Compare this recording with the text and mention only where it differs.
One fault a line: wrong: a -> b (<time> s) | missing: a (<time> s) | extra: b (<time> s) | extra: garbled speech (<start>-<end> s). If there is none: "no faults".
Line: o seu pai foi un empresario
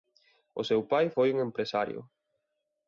no faults